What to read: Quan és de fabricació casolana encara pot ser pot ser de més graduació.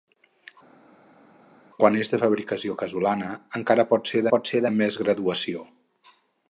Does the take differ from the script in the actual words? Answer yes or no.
no